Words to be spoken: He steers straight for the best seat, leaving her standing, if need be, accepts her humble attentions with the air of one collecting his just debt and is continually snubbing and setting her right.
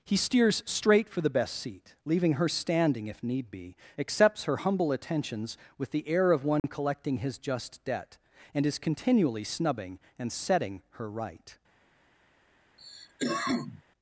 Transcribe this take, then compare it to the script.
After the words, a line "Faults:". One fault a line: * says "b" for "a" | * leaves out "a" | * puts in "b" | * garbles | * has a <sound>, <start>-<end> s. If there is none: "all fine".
He steers straight for the best seat, leaving her standing, if need be, accepts her humble attentions with the air of one collecting his just debt and is continually snubbing and setting her right.
Faults:
* has a dropout, 6.6-6.6 s
* has a cough, 12.8-13.8 s